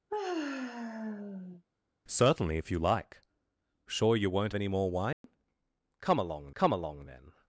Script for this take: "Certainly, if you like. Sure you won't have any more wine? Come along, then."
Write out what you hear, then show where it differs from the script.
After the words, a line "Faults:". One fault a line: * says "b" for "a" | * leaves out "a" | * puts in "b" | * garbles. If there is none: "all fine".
"Certainly, if you like. Sure you won't any more wine? Come along come along, then."
Faults:
* leaves out "have"
* puts in "come along"